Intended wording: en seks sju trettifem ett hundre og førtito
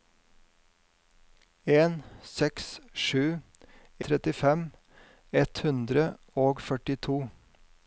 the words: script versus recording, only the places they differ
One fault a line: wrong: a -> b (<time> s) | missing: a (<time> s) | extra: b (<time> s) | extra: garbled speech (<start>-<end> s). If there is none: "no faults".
no faults